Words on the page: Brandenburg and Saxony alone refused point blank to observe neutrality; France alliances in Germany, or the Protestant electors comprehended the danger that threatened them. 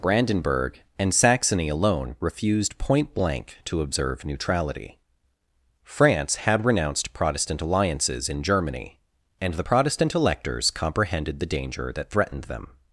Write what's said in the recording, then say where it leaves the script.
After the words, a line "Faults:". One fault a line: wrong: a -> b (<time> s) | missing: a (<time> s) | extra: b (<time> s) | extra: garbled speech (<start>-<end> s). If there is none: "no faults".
Brandenburg and Saxony alone refused point blank to observe neutrality; France had renounced Protestant alliances in Germany, and the Protestant electors comprehended the danger that threatened them.
Faults:
extra: had renounced Protestant (6.4 s)
wrong: or -> and (9.4 s)